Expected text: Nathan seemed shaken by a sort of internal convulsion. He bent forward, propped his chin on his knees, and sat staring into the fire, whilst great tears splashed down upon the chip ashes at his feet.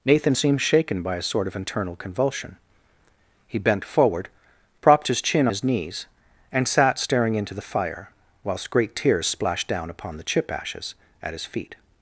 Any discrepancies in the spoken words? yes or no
yes